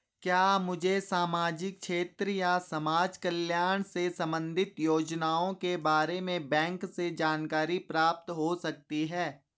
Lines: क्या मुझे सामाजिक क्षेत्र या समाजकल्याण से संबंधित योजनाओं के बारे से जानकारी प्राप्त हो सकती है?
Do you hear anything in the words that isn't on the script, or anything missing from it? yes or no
yes